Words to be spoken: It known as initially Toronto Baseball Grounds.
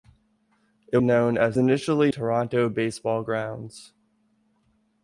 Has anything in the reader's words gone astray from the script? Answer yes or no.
no